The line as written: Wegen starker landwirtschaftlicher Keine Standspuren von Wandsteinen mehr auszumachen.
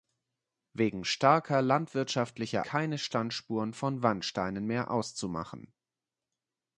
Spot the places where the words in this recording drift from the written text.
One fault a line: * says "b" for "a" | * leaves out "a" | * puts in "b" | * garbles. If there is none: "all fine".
all fine